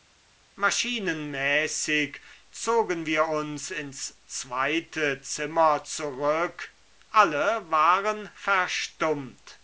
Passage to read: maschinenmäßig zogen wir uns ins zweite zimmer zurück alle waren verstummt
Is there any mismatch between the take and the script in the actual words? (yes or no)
no